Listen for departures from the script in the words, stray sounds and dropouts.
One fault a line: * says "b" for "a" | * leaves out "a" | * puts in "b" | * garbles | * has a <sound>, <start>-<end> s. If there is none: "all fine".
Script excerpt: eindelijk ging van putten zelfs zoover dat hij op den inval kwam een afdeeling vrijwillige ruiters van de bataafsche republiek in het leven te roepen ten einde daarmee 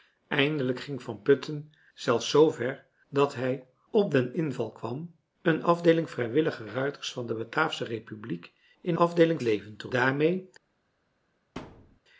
* says "afdeeling" for "het"
* leaves out "roepen ten einde"
* has a thud, 11.6-12.0 s